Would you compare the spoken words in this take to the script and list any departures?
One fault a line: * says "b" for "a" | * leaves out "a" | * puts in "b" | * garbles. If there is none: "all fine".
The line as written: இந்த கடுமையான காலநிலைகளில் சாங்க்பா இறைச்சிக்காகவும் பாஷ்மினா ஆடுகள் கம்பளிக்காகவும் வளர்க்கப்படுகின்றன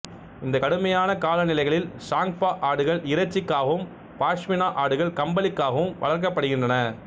* puts in "ஆடுகள்"